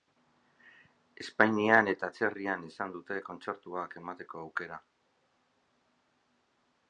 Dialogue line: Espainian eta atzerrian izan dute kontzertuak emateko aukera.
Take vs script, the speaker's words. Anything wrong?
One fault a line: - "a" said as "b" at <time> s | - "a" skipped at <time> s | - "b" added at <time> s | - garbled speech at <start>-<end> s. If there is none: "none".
none